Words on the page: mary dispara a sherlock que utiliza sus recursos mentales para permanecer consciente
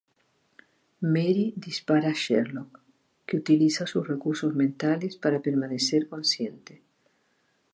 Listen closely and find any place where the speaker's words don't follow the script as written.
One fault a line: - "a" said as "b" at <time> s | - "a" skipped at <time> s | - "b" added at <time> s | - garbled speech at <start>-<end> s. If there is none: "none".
none